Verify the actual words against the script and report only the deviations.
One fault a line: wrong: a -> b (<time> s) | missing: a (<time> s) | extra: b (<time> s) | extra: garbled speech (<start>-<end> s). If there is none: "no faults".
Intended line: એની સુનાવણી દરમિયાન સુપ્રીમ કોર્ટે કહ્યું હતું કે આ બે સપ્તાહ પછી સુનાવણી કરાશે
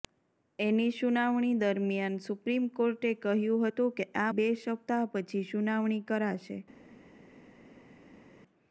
no faults